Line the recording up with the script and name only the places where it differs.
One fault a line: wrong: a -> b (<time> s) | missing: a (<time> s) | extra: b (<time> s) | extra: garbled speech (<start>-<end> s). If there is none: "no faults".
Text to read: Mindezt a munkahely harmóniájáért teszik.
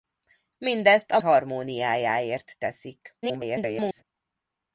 missing: munkahely (1.2 s)
extra: garbled speech (3.2-4.0 s)